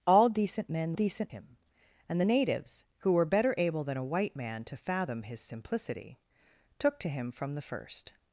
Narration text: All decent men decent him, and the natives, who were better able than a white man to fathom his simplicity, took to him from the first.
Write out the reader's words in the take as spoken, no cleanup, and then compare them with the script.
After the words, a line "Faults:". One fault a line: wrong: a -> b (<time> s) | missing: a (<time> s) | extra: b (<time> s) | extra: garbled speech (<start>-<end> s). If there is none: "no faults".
All decent men decent him, and the natives, who were better able than a white man to fathom his simplicity, took to him from the first.
Faults:
no faults